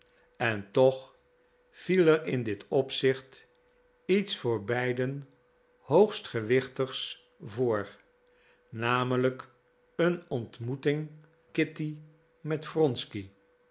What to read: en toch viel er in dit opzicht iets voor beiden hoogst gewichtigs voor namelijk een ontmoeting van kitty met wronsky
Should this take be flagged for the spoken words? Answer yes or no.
yes